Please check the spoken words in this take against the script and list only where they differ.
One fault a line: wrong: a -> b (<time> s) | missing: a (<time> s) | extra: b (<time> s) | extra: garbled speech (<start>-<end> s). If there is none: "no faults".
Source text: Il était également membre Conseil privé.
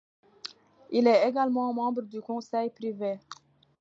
wrong: était -> est (1.1 s)
extra: du (2.0 s)